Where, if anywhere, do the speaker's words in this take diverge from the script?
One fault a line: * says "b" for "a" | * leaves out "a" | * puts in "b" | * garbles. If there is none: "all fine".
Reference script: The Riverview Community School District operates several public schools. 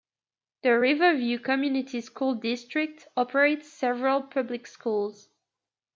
all fine